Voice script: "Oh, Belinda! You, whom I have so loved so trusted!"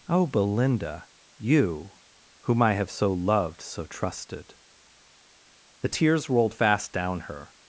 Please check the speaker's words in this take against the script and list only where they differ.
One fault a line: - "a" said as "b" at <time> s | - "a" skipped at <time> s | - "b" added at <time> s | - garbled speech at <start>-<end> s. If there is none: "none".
- "The tears rolled fast down her" added at 5.8 s